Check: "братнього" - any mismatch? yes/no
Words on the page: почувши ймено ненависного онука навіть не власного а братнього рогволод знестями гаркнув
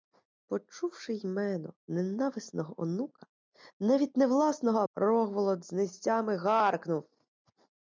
yes